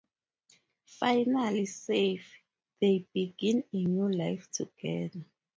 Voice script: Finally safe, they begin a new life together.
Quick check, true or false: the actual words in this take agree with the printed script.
true